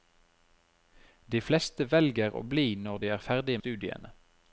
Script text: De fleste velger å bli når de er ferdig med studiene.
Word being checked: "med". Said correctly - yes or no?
no